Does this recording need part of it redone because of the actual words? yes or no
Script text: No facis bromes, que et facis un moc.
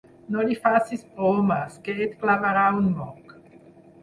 yes